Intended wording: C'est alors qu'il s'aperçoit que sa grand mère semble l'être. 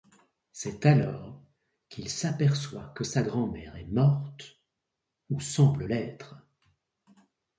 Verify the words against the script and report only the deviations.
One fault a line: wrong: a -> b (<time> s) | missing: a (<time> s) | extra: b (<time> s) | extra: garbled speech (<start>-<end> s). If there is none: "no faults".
extra: est morte ou (3.8 s)